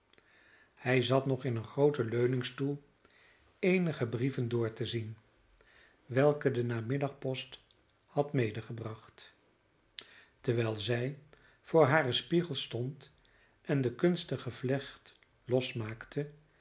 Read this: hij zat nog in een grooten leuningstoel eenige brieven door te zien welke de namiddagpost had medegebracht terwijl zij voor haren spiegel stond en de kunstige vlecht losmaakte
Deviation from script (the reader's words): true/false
false